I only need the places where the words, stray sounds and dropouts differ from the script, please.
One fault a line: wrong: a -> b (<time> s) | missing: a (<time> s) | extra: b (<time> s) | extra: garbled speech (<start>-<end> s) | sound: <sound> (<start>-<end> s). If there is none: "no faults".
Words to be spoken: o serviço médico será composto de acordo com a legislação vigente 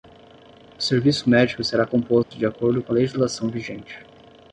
sound: dropout (2.2-2.3 s)